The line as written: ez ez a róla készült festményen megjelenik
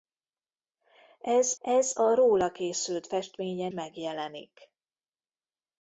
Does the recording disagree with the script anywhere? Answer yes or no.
no